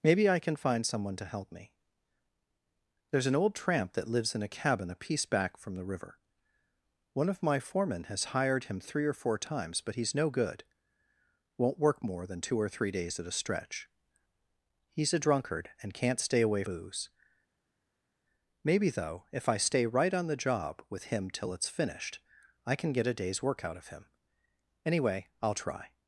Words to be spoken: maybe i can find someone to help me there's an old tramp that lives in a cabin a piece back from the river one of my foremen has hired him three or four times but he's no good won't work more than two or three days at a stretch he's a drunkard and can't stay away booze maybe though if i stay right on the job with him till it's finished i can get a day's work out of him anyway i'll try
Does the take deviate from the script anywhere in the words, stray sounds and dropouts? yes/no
no